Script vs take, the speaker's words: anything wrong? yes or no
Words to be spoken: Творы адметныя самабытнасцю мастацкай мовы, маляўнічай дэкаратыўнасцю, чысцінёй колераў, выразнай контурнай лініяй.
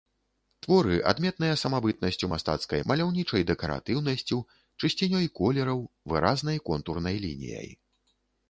yes